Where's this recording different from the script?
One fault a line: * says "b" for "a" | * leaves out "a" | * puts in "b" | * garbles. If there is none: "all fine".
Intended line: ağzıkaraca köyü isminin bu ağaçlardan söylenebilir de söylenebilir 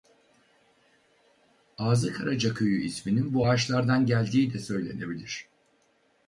* says "geldiği" for "söylenebilir"